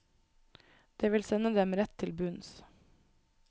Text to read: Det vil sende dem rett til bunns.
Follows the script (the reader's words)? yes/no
yes